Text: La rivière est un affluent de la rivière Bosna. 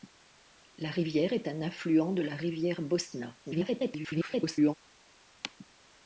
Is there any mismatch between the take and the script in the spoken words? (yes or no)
yes